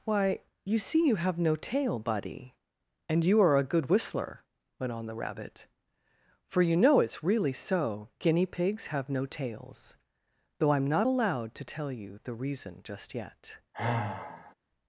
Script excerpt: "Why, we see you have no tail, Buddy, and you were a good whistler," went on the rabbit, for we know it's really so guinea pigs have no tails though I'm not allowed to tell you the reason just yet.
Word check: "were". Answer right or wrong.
wrong